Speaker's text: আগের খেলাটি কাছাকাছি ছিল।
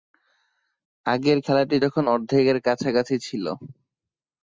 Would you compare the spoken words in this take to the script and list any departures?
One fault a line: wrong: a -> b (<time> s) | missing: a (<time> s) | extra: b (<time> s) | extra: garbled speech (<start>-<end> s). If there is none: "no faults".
extra: যখন অর্ধেকের (1.8 s)